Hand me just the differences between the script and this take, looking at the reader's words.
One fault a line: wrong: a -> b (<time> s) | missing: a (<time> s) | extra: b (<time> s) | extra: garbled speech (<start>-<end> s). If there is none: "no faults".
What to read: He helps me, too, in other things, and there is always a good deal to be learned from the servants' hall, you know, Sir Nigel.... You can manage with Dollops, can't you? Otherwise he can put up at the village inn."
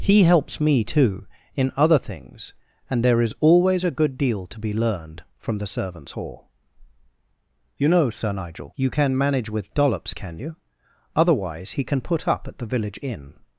wrong: can't -> can (10.1 s)